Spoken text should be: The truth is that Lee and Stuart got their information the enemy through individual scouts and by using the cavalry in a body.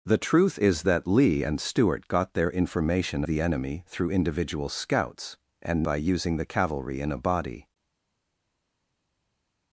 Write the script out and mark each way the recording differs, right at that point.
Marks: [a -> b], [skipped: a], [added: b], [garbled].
The truth is that Lee and Stuart got their information the enemy through individual scouts and by using the cavalry in a body.